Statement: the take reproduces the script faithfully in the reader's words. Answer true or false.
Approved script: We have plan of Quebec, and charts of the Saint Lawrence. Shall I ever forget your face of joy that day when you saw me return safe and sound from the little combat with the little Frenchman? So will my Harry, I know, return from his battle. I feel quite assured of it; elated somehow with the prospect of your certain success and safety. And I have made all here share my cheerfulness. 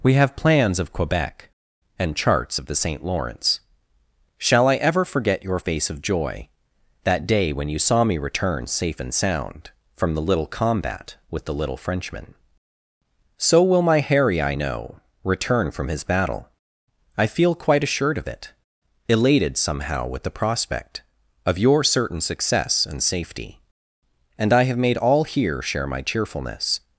false